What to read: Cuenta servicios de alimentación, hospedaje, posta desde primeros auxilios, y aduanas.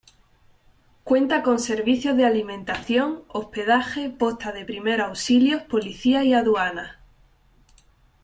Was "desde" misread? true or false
true